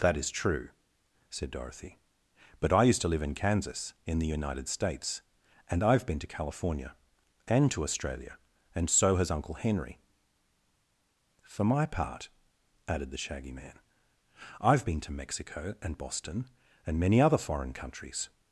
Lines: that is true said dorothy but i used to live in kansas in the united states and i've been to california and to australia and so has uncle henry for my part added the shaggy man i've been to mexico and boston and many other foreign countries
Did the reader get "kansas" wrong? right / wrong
right